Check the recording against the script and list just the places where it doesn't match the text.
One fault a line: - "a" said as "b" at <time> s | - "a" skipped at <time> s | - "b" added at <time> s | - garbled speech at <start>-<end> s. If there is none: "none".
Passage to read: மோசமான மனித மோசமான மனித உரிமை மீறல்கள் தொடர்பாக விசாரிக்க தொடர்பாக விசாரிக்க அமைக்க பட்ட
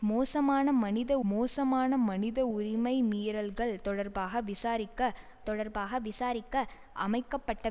none